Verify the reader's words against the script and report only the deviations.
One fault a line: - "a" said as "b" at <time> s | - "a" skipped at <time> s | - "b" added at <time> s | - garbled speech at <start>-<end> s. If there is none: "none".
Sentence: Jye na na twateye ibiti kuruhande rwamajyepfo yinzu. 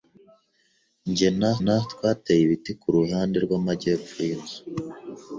none